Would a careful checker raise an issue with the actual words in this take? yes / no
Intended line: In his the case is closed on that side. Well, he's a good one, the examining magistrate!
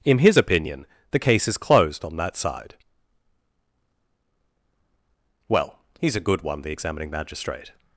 yes